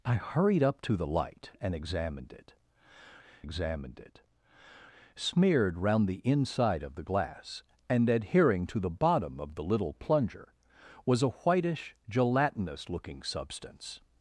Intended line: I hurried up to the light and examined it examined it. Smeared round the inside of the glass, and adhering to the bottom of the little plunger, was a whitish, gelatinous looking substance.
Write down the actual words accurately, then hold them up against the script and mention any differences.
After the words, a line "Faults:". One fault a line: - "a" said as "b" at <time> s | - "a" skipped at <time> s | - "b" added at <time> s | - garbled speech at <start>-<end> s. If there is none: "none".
I hurried up to the light and examined it examined it. Smeared round the inside of the glass, and adhering to the bottom of the little plunger, was a whitish, gelatinous looking substance.
Faults:
none